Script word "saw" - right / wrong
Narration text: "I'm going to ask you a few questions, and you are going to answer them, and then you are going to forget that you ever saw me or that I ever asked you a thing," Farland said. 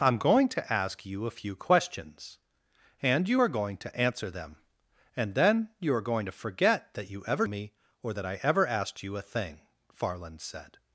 wrong